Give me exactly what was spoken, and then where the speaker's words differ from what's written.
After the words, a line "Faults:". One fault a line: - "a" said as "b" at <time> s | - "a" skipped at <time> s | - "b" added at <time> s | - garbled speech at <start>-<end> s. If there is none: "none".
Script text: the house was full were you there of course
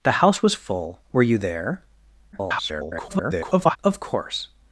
the house was full were you there [garbled] of course
Faults:
- garbled speech at 2.3-3.8 s